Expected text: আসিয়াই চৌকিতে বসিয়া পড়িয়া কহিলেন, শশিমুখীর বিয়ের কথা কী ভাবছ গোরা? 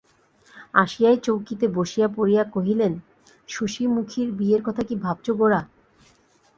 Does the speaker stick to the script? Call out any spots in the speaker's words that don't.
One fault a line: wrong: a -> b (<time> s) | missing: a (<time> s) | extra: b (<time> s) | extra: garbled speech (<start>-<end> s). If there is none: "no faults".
no faults